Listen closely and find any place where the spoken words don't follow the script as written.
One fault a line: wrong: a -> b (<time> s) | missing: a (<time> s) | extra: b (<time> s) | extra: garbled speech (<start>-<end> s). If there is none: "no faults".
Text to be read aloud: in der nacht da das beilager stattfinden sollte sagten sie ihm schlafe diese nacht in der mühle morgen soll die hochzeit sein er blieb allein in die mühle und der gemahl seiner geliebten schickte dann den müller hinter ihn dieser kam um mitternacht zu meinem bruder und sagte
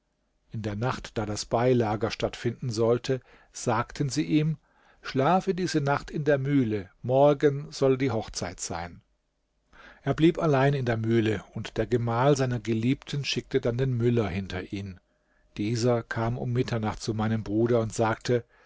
wrong: die -> der (10.8 s)